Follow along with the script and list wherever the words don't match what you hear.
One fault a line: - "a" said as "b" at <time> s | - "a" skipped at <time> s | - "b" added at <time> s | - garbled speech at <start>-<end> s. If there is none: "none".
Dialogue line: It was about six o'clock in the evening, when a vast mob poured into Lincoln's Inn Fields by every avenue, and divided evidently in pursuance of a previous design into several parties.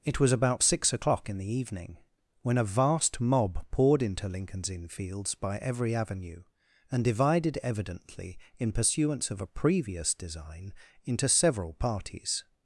none